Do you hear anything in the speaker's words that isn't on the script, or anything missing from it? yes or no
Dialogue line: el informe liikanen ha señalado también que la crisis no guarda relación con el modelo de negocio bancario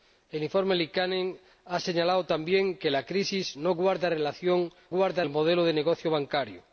yes